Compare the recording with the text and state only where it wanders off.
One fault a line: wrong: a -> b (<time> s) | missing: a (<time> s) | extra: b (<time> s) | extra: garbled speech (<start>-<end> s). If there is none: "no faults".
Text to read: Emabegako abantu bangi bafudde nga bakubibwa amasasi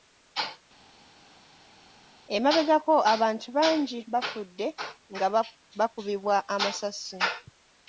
no faults